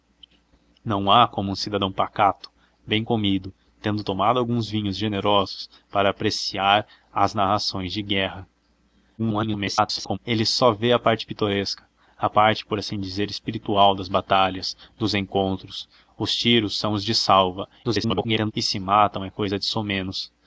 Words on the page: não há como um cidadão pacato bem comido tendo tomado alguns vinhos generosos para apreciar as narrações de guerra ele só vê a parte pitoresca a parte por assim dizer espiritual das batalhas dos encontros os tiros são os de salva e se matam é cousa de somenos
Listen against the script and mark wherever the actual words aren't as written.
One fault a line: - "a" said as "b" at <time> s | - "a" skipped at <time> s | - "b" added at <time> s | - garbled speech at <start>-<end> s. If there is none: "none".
- garbled speech at 9.2-10.2 s
- garbled speech at 17.8-18.5 s